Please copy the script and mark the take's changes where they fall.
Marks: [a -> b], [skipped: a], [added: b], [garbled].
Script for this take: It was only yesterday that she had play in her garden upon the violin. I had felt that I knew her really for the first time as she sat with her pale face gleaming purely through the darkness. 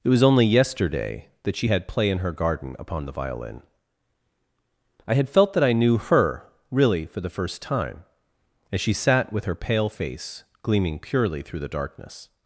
It was only yesterday that she had play in her garden upon the violin. I had felt that I knew her really for the first time as she sat with her pale face gleaming purely through the darkness.